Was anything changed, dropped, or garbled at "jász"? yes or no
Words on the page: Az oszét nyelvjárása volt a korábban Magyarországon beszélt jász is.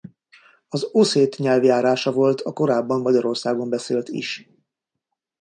yes